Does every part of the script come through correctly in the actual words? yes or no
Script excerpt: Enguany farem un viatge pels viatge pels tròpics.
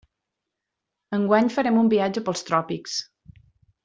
no